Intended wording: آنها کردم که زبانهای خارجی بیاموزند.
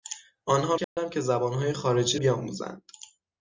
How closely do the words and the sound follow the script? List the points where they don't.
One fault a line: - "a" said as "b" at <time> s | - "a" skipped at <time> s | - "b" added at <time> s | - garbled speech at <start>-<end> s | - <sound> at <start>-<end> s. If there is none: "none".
- dropout at 0.8-1.0 s